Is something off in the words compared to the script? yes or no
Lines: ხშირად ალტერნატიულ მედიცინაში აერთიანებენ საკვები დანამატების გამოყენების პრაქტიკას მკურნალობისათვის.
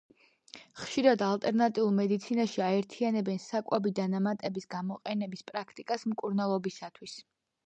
no